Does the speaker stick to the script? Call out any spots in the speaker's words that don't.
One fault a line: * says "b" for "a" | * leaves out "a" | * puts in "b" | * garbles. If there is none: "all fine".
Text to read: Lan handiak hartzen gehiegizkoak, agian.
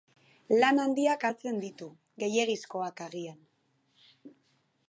* puts in "ditu"